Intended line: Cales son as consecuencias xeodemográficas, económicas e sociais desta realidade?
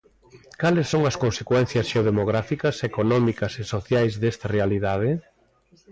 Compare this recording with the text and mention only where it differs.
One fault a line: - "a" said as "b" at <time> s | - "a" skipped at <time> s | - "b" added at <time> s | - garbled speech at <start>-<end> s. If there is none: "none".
none